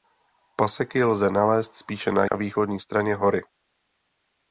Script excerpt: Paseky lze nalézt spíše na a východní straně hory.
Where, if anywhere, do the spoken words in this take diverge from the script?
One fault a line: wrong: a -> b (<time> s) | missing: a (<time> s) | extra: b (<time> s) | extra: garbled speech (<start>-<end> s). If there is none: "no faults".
no faults